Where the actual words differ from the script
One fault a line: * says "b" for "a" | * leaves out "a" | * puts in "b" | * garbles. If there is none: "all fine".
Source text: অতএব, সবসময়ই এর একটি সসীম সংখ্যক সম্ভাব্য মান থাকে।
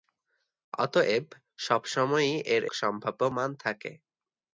* leaves out "একটি সসীম সংখ্যক"